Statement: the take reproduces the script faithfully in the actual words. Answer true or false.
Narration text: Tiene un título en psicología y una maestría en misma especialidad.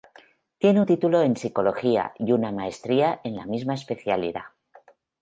false